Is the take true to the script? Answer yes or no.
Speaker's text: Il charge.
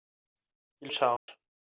yes